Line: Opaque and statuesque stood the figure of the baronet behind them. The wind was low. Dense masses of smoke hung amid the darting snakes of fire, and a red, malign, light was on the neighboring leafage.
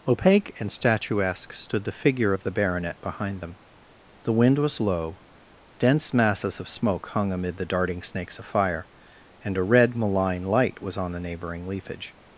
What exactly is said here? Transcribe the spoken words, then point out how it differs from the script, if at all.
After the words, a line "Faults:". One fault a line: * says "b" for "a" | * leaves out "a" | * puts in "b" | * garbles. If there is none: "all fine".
Opaque and statuesque stood the figure of the baronet behind them. The wind was low. Dense masses of smoke hung amid the darting snakes of fire, and a red, malign, light was on the neighboring leafage.
Faults:
all fine